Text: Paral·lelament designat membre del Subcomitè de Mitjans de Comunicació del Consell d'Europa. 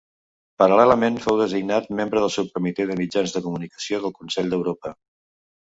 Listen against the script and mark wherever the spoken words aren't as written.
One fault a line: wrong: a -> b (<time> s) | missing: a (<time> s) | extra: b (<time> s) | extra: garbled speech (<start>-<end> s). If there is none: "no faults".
extra: fou (1.2 s)